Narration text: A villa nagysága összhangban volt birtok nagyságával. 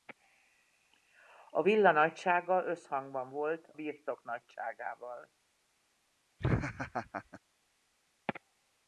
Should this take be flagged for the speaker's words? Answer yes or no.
no